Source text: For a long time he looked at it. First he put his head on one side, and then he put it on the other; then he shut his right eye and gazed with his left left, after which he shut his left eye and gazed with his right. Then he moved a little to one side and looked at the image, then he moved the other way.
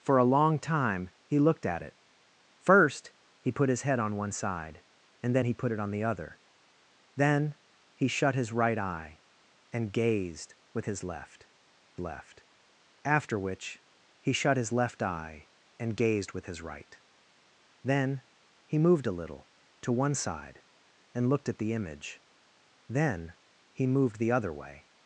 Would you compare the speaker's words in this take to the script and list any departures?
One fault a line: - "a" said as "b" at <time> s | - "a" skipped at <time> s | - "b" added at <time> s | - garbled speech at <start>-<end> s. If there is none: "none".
none